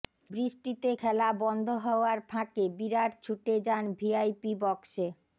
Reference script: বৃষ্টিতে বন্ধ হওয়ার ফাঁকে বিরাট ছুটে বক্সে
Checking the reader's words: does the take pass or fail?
fail